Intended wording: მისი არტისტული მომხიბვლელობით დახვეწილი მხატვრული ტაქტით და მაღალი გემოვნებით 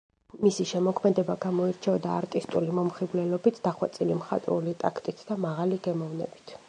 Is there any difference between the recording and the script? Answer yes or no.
yes